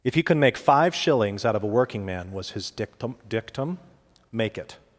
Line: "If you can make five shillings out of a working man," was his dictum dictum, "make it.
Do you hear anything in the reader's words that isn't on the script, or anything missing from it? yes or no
no